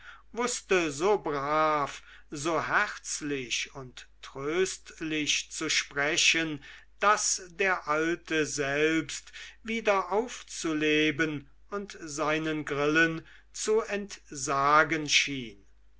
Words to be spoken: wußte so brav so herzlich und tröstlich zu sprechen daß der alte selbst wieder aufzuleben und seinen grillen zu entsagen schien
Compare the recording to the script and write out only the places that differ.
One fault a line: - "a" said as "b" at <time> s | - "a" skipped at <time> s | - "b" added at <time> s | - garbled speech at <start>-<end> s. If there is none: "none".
none